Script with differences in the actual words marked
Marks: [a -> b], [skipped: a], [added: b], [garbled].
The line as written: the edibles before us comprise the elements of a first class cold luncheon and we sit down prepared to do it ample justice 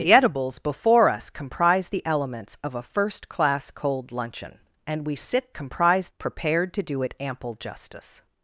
the edibles before us comprise the elements of a first class cold luncheon and we sit [down -> comprise] prepared to do it ample justice